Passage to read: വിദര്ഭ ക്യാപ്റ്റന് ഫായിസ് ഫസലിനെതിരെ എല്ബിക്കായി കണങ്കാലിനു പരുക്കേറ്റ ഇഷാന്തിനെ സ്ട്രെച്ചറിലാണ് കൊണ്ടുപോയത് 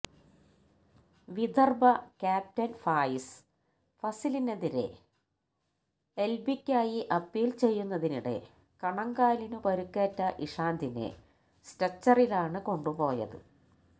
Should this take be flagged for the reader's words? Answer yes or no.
yes